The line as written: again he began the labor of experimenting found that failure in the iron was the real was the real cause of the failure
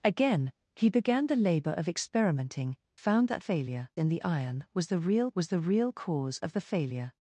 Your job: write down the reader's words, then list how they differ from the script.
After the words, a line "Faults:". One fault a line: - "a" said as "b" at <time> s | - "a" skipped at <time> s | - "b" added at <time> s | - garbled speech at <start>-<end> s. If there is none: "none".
again he began the labor of experimenting found that failure in the iron was the real was the real cause of the failure
Faults:
none